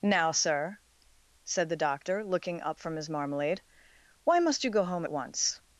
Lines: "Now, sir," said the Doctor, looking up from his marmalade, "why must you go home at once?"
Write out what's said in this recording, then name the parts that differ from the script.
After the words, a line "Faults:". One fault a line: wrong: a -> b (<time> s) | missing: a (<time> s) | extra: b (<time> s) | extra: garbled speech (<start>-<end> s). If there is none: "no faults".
"Now, sir," said the Doctor, looking up from his marmalade, "why must you go home at once?"
Faults:
no faults